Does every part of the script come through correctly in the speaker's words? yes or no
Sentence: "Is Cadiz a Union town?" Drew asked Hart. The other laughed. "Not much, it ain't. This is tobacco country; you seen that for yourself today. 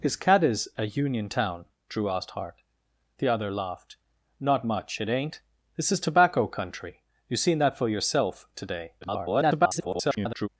no